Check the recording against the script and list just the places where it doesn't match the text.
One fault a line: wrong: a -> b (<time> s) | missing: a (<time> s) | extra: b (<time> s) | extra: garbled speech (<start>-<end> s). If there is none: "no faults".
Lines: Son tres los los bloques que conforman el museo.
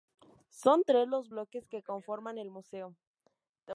missing: los (1.3 s)